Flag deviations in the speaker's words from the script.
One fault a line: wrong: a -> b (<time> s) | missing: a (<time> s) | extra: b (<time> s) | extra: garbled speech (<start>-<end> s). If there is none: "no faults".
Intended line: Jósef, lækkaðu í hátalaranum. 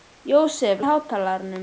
missing: lækkaðu (0.8 s)